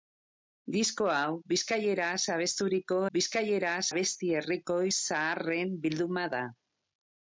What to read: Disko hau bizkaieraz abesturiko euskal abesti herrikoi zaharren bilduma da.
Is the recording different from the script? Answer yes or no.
yes